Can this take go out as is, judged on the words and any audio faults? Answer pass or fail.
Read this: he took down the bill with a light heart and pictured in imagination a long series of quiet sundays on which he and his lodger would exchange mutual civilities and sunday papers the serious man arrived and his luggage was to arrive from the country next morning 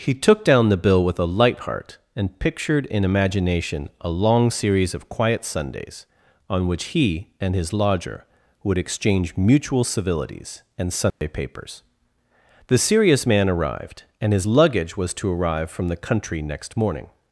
fail